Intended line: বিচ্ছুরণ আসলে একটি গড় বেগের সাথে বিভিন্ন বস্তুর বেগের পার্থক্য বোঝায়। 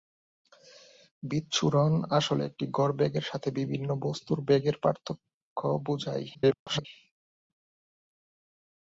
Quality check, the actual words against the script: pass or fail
fail